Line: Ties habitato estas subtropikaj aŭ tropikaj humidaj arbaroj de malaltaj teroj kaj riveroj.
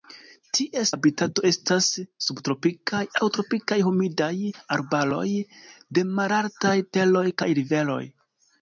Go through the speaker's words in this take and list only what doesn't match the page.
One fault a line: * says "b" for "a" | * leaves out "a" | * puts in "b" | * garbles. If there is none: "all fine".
all fine